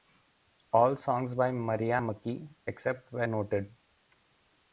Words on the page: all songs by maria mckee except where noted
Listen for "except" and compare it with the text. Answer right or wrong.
right